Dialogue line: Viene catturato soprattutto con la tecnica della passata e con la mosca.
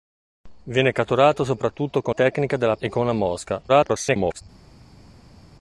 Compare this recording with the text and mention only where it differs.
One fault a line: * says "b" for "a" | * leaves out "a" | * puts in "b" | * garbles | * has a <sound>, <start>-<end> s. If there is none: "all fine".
* leaves out "la"
* leaves out "passata"
* garbles